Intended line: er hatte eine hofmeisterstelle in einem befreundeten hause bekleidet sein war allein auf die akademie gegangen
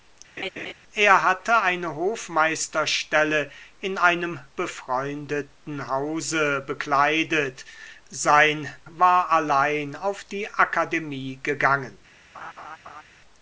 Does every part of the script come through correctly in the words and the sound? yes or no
no